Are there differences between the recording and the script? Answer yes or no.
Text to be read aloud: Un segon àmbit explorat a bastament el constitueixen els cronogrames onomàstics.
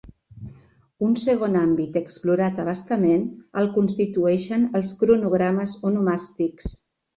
no